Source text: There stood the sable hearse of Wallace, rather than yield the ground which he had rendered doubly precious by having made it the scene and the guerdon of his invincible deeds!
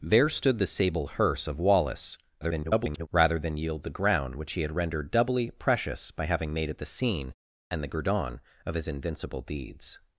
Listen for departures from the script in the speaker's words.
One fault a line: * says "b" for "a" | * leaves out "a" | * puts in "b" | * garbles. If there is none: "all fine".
* garbles